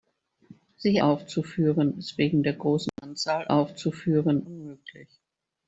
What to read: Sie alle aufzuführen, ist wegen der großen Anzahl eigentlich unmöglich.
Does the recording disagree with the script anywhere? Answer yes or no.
yes